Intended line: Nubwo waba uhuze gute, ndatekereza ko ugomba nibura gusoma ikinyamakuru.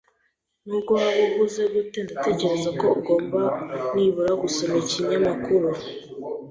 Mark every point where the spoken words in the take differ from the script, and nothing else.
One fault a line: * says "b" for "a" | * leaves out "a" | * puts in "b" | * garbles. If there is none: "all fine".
all fine